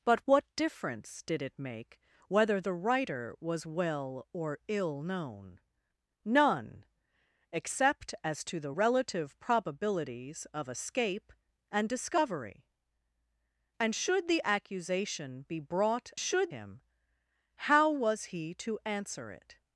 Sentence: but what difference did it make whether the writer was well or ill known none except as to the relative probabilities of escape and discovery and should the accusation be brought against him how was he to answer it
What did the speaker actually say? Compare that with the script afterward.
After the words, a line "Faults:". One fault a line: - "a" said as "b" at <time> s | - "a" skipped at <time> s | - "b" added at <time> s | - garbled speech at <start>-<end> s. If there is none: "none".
but what difference did it make whether the writer was well or ill known none except as to the relative probabilities of escape and discovery and should the accusation be brought should him how was he to answer it
Faults:
- "against" said as "should" at 16.2 s